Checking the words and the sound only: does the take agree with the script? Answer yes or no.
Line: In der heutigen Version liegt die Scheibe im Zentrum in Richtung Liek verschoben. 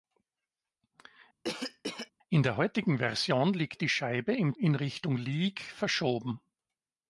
no